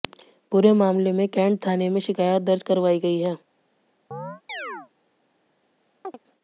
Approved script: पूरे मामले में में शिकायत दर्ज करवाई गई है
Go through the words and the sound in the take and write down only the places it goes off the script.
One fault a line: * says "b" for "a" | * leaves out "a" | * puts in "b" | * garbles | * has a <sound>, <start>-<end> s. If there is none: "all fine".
* puts in "कैंट थाने"
* has a chirp, 4.1-4.9 s
* has a chirp, 6.0-6.2 s